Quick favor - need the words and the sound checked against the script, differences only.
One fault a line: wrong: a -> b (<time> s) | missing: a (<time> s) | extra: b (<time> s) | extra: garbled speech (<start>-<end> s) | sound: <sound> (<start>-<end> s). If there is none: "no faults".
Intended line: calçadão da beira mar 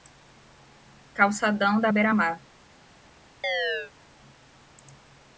sound: chirp (3.4-3.9 s)